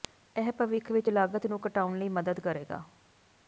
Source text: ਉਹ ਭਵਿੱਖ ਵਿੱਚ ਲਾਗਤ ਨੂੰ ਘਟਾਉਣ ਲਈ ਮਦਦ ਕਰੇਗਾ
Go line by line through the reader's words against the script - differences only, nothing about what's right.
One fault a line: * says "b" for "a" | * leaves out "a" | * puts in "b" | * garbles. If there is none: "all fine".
* says "ਇਹ" for "ਉਹ"